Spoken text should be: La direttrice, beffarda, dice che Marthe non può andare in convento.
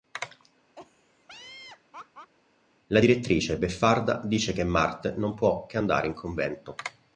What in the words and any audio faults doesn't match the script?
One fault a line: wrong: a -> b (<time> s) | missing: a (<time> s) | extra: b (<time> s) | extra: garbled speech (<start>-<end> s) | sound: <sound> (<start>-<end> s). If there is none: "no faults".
sound: laugh (0.8-2.3 s)
extra: che (5.6 s)